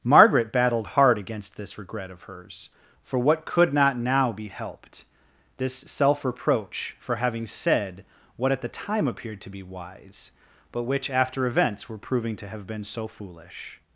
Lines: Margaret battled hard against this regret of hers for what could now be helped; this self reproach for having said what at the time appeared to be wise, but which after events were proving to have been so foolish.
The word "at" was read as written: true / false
true